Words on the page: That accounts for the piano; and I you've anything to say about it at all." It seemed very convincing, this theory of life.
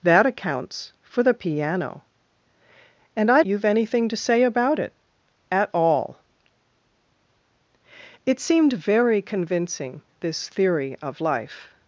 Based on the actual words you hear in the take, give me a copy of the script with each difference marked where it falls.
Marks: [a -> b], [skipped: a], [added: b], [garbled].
That accounts for the piano; and I you've anything to say about it at all." It seemed very convincing, this theory of life.